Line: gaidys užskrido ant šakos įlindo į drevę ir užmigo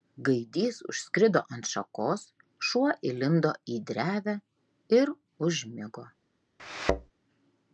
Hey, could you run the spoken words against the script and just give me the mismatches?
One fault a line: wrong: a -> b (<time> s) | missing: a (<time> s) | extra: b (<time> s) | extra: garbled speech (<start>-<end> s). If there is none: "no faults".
extra: šuo (2.7 s)